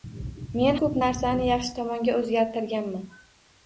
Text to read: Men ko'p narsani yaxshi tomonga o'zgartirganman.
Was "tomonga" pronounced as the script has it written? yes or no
yes